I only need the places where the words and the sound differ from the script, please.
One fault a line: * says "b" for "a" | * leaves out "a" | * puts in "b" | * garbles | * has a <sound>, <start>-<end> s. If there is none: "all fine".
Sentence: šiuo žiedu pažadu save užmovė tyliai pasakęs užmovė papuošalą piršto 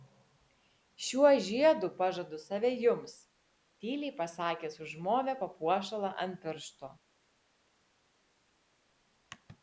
* says "jums" for "užmovė"
* puts in "ant"